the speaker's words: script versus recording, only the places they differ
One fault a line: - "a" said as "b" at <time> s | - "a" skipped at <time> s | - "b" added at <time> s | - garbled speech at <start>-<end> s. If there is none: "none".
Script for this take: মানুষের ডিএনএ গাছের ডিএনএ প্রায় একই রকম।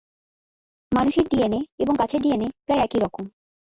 - "এবং" added at 1.8 s